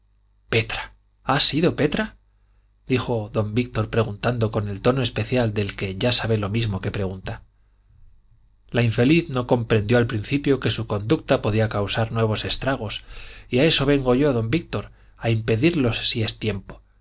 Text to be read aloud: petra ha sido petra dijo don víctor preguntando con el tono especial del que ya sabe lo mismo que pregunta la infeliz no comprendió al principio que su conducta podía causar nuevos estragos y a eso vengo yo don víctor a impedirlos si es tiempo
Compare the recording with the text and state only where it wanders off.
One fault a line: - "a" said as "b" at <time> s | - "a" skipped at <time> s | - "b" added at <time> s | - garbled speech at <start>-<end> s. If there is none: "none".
none